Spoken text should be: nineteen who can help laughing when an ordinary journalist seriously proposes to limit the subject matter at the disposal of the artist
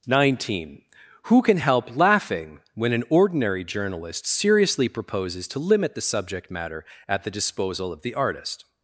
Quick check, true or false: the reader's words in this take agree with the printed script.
true